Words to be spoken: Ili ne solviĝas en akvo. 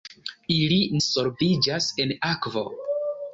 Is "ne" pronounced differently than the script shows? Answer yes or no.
yes